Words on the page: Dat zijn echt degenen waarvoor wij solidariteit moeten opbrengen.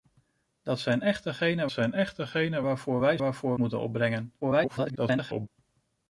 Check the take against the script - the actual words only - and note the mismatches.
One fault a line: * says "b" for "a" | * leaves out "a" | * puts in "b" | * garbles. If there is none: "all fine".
* puts in "zijn echt degenen"
* says "waarvoor" for "solidariteit"
* garbles